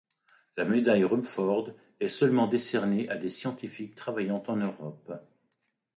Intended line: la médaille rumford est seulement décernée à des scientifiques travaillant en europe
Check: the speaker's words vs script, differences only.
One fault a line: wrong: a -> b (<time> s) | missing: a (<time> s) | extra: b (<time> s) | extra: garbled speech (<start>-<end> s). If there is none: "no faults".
no faults